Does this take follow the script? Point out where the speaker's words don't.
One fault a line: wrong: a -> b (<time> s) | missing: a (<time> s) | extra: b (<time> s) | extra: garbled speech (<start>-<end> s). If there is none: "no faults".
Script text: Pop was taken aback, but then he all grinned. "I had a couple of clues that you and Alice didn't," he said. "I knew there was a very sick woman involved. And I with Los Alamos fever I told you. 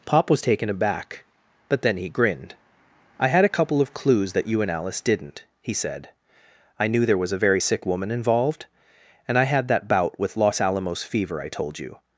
missing: all (2.1 s)
extra: had that bout (9.4 s)